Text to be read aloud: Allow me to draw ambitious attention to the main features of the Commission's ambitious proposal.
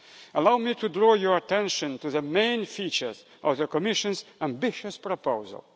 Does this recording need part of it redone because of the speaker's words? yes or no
yes